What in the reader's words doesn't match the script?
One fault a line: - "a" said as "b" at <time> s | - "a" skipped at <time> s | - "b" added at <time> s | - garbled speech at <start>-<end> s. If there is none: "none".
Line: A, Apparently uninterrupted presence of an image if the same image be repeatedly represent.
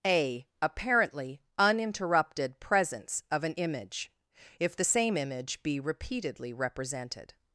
- "represent" said as "represented" at 6.5 s